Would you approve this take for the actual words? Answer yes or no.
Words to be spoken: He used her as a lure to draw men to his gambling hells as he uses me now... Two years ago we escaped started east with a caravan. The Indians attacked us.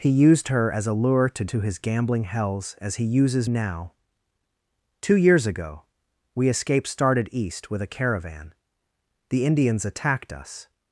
no